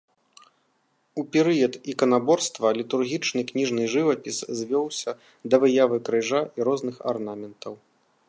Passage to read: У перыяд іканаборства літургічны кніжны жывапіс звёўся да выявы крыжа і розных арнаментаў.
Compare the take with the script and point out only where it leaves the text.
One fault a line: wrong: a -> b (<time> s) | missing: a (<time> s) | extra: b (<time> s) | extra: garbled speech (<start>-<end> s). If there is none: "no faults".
no faults